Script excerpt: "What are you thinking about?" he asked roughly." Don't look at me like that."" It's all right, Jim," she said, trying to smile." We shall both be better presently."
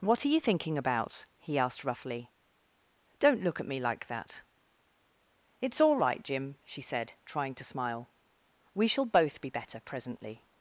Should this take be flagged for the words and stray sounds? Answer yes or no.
no